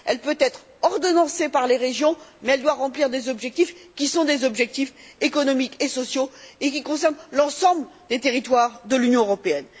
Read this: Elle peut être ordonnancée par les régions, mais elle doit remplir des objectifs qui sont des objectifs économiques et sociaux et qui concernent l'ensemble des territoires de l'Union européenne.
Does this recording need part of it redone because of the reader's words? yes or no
no